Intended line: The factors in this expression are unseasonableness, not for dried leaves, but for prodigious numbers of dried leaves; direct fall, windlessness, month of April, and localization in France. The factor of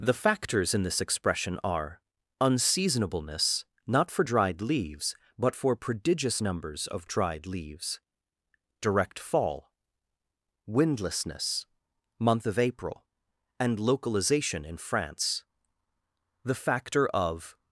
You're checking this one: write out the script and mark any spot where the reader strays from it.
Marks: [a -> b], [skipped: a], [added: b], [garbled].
The factors in this expression are unseasonableness, not for dried leaves, but for prodigious numbers of dried leaves; direct fall, windlessness, month of April, and localization in France. The factor of